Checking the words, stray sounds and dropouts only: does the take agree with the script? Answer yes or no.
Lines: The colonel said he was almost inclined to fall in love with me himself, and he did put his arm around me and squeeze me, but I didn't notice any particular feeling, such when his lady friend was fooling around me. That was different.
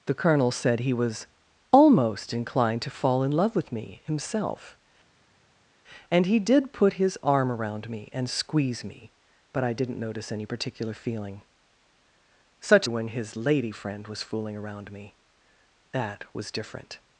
yes